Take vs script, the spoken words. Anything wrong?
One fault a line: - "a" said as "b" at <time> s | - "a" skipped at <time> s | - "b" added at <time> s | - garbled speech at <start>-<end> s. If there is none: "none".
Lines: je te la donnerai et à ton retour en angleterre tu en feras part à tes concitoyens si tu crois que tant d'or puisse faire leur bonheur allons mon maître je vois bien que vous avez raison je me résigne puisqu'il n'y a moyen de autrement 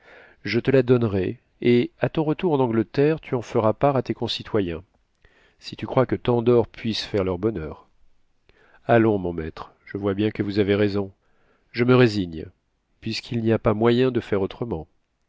- "pas" added at 13.6 s
- "faire" added at 14.2 s